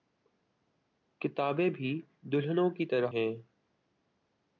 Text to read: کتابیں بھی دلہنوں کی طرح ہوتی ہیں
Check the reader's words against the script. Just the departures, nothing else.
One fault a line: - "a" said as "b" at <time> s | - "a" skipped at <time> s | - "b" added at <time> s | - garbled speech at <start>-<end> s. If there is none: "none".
- "ہوتی" skipped at 3.1 s